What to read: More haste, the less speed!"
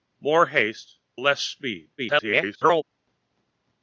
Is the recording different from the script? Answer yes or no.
yes